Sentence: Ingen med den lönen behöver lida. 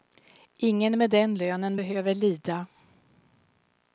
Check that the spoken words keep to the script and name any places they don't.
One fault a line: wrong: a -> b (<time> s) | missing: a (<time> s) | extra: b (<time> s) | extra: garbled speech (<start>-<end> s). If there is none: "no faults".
no faults